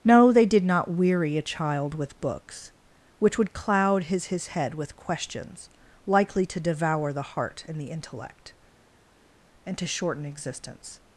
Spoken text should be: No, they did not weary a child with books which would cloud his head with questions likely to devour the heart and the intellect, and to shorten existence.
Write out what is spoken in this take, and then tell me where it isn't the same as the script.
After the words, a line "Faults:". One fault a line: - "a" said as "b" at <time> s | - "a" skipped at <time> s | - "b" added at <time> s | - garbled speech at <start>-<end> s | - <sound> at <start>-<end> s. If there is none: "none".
No, they did not weary a child with books which would cloud his his head with questions likely to devour the heart and the intellect, and to shorten existence.
Faults:
- "his" added at 4.3 s